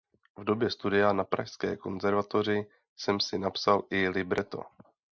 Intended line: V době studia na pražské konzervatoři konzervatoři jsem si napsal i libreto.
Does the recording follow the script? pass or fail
fail